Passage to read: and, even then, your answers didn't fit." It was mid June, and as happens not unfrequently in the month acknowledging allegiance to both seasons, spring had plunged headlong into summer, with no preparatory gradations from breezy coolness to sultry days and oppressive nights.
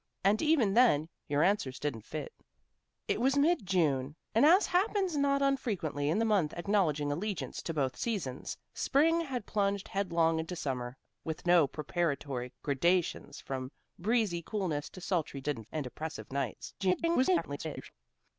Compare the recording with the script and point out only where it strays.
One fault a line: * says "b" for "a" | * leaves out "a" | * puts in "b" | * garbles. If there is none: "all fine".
* says "didn't" for "days"
* garbles